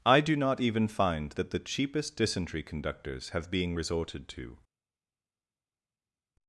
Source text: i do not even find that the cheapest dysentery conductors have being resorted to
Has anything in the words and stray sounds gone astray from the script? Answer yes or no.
no